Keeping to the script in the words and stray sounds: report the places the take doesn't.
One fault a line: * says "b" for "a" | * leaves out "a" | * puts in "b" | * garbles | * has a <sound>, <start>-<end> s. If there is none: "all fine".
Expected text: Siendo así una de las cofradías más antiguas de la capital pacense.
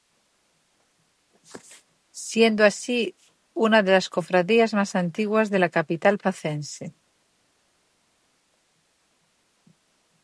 all fine